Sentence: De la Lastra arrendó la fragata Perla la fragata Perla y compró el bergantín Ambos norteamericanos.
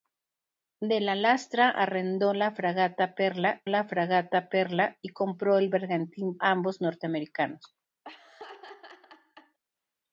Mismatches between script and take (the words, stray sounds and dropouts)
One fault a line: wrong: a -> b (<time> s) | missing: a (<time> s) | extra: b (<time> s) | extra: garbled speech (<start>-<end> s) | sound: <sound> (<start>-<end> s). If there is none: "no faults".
sound: laugh (8.0-9.6 s)